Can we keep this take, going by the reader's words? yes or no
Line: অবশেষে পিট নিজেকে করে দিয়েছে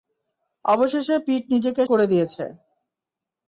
yes